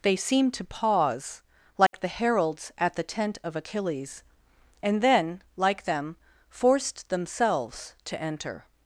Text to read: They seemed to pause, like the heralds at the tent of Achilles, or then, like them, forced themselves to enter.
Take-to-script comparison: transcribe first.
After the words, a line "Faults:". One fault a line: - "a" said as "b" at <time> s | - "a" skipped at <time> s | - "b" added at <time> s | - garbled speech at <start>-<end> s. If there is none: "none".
They seemed to pause, like the heralds at the tent of Achilles, and then, like them, forced themselves to enter.
Faults:
- "or" said as "and" at 4.8 s